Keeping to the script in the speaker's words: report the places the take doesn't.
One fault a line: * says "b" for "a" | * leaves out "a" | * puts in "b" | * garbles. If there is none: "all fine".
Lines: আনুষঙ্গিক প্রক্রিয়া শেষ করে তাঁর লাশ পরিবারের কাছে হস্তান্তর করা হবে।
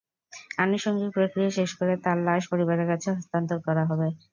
all fine